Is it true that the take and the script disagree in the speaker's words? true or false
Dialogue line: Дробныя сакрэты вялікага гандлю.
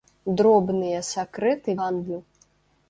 true